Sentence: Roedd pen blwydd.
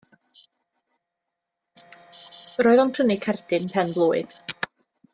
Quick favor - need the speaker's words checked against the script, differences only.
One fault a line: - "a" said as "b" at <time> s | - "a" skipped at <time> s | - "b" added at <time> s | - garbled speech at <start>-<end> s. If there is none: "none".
- "o'n prynu cerdyn" added at 2.9 s